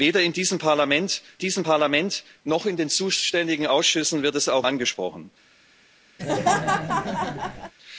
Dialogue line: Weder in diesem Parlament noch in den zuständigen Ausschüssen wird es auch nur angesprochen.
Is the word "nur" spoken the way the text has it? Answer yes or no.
no